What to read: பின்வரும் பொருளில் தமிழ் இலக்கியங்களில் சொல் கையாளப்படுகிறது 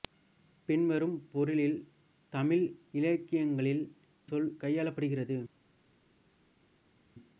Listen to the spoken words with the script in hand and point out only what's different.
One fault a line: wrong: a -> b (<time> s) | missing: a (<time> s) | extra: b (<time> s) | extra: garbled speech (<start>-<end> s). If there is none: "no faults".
no faults